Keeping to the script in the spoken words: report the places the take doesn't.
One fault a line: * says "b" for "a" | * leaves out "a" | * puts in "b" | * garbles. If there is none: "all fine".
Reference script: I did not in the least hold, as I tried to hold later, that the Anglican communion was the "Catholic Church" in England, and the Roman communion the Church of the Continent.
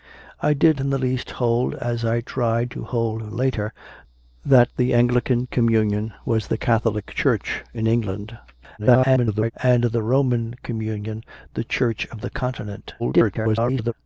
* leaves out "not"
* garbles
* garbles